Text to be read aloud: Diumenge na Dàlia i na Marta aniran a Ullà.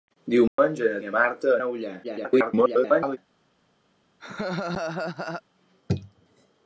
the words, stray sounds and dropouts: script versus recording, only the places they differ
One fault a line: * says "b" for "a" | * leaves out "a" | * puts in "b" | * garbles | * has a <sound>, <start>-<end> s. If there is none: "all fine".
* has a dropout, 0.5-0.6 s
* leaves out "Dàlia"
* leaves out "aniran"
* garbles
* has a laugh, 4.2-5.4 s